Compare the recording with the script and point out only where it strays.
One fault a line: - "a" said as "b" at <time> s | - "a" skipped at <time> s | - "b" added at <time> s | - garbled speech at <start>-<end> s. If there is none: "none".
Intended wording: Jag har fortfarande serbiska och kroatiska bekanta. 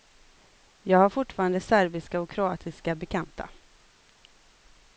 none